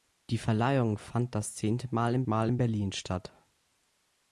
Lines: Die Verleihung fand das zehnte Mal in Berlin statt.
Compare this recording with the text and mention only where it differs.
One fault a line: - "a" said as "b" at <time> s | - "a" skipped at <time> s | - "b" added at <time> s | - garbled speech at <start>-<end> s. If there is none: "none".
- "Mal in" added at 2.3 s